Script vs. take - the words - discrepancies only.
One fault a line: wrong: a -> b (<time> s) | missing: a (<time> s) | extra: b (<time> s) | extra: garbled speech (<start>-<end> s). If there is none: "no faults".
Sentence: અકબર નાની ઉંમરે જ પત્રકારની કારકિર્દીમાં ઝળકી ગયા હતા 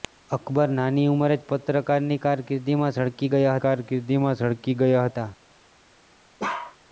extra: કારકિર્દીમાં ઝળકી ગયા (3.6 s)